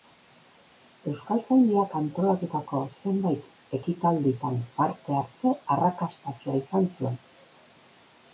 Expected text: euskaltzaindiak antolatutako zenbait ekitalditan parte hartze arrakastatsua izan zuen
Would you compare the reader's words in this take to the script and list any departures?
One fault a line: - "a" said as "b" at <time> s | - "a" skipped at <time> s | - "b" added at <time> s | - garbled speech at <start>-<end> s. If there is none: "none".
none